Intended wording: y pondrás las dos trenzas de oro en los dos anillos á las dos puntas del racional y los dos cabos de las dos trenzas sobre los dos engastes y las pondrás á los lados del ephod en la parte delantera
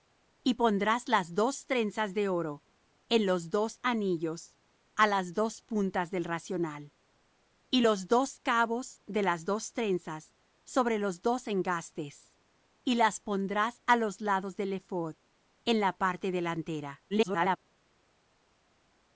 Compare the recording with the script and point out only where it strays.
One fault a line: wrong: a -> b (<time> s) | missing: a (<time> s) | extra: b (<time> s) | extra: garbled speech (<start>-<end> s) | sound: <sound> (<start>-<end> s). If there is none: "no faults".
extra: garbled speech (17.1-17.6 s)